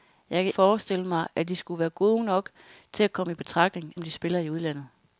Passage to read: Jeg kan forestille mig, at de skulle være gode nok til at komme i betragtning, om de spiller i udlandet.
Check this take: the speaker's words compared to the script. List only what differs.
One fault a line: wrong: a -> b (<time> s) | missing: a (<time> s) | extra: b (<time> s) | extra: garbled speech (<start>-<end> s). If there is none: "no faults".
no faults